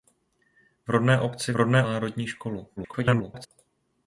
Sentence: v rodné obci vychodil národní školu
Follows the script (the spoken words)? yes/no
no